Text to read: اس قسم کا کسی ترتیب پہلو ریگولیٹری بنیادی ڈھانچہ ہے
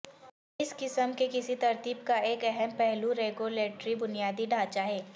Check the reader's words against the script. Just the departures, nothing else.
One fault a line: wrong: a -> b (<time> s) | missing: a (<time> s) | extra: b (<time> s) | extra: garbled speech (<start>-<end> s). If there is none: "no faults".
wrong: کا -> کے (1.2 s)
extra: کا ایک اہم (2.0 s)